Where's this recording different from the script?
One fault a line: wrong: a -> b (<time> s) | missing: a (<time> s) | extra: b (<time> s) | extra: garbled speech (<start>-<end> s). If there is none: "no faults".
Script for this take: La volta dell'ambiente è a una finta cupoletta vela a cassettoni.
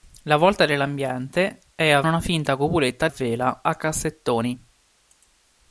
no faults